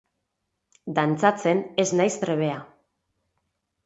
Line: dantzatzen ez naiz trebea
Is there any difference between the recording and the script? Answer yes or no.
no